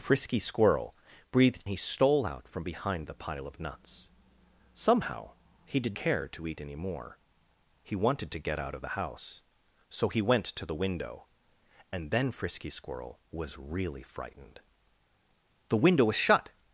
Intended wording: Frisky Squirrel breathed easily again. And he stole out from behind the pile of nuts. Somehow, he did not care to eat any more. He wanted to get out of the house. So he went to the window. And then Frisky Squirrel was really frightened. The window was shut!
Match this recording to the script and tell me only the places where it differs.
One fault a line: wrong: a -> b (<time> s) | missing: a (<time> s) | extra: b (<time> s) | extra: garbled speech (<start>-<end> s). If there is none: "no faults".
missing: easily again And (1.6 s)
missing: not (6.0 s)